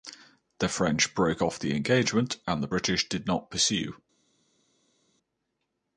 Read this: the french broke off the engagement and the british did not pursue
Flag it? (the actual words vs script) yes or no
no